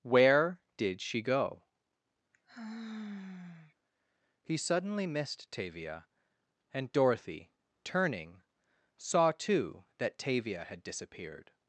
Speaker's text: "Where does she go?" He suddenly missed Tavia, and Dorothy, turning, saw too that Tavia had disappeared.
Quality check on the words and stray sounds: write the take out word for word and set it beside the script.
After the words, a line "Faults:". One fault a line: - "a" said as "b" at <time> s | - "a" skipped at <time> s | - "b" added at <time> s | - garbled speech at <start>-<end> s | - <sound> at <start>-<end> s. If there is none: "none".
"Where did she go?" He suddenly missed Tavia, and Dorothy, turning, saw too that Tavia had disappeared.
Faults:
- "does" said as "did" at 0.8 s
- sigh at 2.3-3.7 s